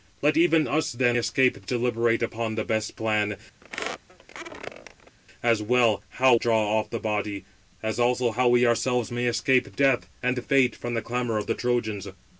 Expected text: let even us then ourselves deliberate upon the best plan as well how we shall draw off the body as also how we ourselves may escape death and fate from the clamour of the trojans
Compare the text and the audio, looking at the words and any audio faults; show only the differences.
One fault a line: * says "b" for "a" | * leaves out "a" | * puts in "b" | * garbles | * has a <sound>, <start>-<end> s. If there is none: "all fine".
* says "escape" for "ourselves"
* has a squeak, 3.6-5.2 s
* leaves out "we shall"